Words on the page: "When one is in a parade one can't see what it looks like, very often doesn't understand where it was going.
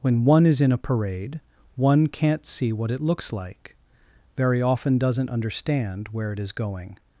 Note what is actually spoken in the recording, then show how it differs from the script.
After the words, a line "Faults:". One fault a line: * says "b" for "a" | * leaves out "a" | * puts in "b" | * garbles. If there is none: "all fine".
"When one is in a parade one can't see what it looks like, very often doesn't understand where it is going.
Faults:
* says "is" for "was"